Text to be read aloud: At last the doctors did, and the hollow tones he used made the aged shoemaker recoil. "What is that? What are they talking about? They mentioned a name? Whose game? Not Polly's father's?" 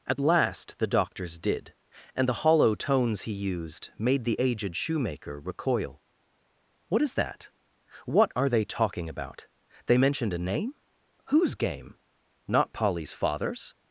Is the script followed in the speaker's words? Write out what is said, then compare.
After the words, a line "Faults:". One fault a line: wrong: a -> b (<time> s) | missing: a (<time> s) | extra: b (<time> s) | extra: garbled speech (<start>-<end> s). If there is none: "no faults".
At last the doctors did, and the hollow tones he used made the aged shoemaker recoil. "What is that? What are they talking about? They mentioned a name? Whose game? Not Polly's father's?"
Faults:
no faults